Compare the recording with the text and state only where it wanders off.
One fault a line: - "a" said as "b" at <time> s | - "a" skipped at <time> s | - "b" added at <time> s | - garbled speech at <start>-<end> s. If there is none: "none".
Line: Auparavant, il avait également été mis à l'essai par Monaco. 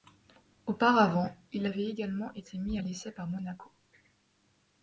none